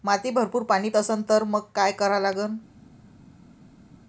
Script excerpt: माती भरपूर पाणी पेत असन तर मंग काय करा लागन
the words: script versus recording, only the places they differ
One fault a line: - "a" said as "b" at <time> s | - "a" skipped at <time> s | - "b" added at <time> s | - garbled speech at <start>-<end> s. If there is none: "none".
- "पेत" skipped at 0.9 s